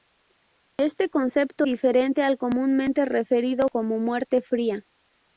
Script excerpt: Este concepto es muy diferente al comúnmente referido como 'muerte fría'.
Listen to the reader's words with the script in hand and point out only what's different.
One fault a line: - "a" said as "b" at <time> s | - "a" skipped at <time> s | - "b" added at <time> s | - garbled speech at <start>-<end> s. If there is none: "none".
- "es muy" skipped at 1.7 s